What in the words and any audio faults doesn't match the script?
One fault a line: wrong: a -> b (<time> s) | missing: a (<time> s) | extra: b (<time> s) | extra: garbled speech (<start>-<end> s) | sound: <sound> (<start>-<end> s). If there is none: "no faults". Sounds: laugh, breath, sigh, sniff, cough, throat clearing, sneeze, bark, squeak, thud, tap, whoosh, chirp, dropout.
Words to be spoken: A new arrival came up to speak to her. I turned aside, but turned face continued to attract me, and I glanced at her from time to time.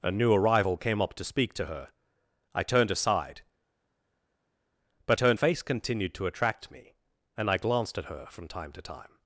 no faults